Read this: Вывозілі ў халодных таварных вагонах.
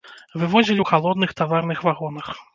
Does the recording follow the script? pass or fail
pass